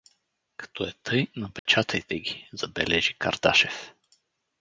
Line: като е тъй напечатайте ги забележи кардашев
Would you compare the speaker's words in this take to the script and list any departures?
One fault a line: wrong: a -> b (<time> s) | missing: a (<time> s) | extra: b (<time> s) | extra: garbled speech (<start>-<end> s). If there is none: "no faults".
no faults